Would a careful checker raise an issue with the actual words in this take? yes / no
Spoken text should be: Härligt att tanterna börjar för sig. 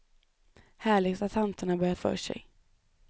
no